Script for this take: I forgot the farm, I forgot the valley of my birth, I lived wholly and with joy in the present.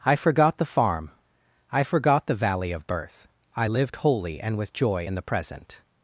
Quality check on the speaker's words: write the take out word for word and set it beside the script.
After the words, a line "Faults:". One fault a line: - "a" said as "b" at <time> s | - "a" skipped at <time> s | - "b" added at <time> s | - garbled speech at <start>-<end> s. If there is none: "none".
I forgot the farm, I forgot the valley of birth, I lived wholly and with joy in the present.
Faults:
- "my" skipped at 2.9 s